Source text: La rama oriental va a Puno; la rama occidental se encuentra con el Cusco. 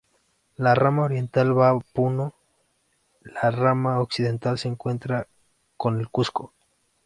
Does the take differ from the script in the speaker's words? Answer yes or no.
no